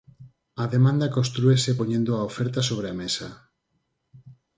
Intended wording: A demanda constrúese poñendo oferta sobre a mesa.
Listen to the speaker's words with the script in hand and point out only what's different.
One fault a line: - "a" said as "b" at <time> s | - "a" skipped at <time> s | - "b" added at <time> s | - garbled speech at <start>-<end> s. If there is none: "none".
- "a" added at 2.2 s